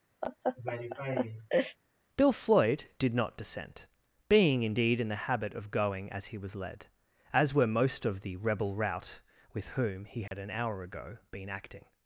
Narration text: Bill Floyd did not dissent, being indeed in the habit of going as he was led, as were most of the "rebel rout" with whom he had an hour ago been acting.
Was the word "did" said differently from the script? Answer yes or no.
no